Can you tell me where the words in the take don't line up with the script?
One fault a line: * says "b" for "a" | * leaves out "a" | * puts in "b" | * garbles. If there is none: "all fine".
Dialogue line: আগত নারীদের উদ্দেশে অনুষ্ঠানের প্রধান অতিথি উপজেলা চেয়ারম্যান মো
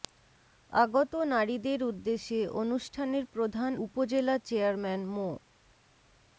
* leaves out "অতিথি"